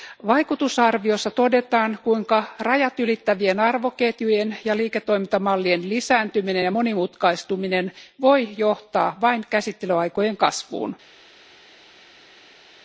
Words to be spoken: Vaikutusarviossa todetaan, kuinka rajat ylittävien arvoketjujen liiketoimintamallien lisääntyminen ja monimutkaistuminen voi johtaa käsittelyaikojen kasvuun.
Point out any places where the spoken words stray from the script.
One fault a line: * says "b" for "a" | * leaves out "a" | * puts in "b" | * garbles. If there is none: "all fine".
* puts in "ja"
* puts in "vain"